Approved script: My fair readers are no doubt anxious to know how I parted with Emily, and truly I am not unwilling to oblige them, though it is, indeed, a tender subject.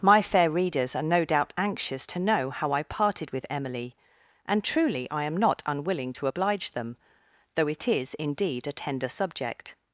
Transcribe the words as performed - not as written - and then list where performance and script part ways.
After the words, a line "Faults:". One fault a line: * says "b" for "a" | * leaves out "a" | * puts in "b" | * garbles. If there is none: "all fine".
My fair readers are no doubt anxious to know how I parted with Emily, and truly I am not unwilling to oblige them, though it is, indeed, a tender subject.
Faults:
all fine